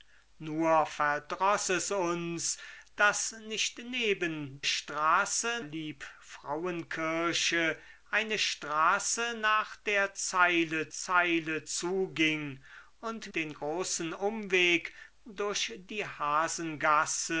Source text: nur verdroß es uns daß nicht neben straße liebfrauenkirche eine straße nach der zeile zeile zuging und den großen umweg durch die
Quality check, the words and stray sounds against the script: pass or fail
pass